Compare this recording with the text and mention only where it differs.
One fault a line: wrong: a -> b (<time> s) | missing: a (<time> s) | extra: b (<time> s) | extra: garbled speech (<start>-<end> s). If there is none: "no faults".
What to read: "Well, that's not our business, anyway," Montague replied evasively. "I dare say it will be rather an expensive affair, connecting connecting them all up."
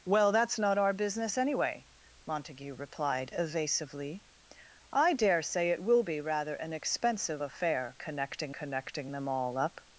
no faults